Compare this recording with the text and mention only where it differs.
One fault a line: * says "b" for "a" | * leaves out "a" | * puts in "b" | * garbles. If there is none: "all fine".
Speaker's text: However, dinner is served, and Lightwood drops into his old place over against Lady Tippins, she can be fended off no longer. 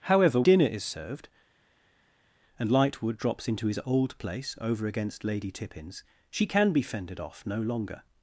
all fine